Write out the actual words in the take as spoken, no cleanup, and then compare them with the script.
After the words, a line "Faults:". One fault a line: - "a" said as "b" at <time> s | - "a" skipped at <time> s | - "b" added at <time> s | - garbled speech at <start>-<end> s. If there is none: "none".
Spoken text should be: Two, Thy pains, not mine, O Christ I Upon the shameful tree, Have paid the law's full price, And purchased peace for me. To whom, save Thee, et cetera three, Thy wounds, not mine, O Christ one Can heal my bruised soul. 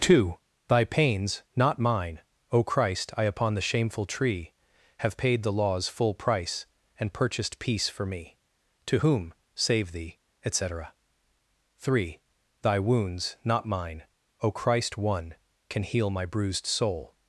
Two, Thy pains, not mine, O Christ I Upon the shameful tree, Have paid the law's full price, And purchased peace for me. To whom, save Thee, et cetera three, Thy wounds, not mine, O Christ one Can heal my bruised soul.
Faults:
none